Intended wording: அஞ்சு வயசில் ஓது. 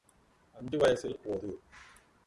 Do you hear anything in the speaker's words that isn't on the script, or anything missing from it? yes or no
no